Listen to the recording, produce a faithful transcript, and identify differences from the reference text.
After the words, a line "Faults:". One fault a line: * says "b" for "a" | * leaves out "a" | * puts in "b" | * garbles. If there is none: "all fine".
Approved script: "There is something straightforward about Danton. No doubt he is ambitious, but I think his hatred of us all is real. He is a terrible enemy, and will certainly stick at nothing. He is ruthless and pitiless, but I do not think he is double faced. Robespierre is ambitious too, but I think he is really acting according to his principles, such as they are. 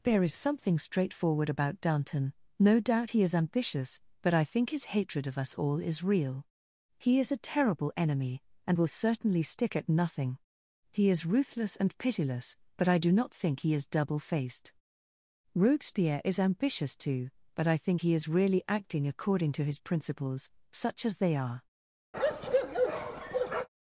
"There is something straightforward about Danton. No doubt he is ambitious, but I think his hatred of us all is real. He is a terrible enemy, and will certainly stick at nothing. He is ruthless and pitiless, but I do not think he is double faced. Robespierre is ambitious too, but I think he is really acting according to his principles, such as they are.
Faults:
all fine